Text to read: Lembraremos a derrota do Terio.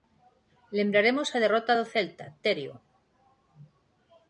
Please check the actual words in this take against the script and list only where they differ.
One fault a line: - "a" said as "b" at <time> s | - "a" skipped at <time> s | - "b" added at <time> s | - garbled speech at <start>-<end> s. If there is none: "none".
- "Celta" added at 1.9 s